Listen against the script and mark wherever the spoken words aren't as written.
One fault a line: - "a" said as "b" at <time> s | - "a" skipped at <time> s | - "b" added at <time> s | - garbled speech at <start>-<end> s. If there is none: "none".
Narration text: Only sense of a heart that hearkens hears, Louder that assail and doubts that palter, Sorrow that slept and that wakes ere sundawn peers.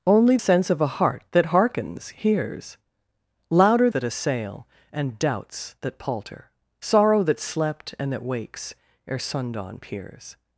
none